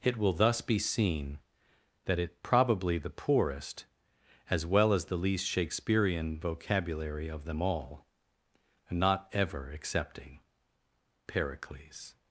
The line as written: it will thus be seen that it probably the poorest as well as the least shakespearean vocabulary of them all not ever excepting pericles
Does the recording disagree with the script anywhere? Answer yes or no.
no